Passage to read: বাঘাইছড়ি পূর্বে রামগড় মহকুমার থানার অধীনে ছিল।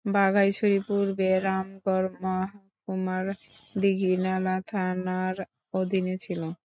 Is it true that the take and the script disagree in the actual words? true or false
true